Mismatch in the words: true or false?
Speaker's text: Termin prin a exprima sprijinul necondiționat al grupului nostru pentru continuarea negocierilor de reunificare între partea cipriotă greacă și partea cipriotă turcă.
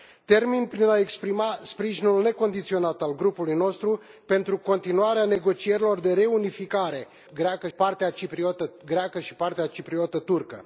true